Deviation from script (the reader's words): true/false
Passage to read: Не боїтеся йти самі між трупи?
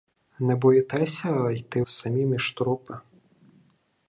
false